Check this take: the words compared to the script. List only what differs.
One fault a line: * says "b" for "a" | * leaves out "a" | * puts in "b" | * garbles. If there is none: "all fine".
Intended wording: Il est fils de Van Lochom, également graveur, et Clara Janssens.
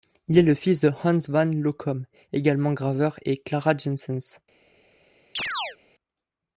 * puts in "le"
* puts in "Hans"